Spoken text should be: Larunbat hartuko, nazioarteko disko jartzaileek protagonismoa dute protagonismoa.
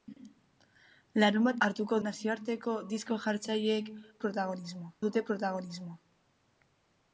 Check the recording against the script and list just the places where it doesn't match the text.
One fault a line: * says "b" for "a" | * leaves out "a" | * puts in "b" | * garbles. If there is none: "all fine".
all fine